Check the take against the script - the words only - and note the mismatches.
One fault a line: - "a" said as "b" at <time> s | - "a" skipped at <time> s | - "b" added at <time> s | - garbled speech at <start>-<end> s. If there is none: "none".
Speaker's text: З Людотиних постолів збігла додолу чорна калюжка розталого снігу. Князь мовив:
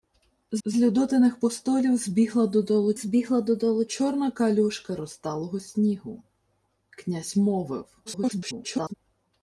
- "з" added at 0.6 s
- "збігла додолу" added at 3.0 s
- garbled speech at 8.1-8.9 s